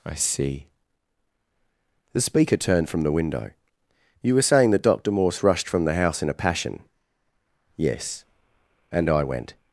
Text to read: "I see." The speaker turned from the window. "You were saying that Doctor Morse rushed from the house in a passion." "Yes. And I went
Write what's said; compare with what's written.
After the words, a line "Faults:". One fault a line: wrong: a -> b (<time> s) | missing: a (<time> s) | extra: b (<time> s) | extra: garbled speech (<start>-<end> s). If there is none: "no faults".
"I see." The speaker turned from the window. "You were saying that Doctor Morse rushed from the house in a passion." "Yes. And I went
Faults:
no faults